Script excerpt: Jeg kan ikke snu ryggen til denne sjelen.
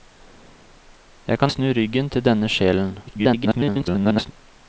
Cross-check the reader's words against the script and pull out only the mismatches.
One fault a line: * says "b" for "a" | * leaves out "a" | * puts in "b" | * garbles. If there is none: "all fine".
* leaves out "ikke"
* garbles